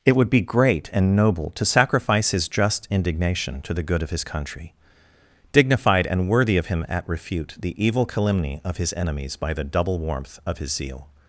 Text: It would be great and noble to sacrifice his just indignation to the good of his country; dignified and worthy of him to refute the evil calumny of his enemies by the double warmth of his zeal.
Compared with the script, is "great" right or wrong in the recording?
right